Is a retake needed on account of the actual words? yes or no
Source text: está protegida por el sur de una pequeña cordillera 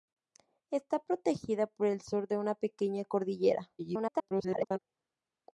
yes